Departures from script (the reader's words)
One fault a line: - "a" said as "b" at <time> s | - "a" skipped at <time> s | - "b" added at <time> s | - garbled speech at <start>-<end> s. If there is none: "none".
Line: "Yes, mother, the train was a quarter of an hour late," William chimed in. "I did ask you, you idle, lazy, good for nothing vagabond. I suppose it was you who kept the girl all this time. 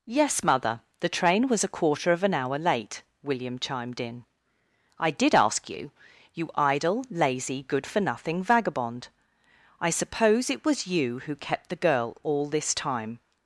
none